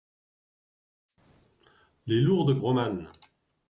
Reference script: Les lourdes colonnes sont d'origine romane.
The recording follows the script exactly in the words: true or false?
false